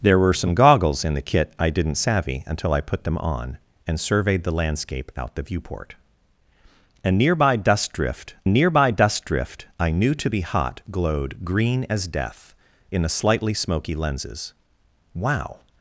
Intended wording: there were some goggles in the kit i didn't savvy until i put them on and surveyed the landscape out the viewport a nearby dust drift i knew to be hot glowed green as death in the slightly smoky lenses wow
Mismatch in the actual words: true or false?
true